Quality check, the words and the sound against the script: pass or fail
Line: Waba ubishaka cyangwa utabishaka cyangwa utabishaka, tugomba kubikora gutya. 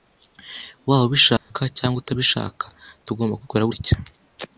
fail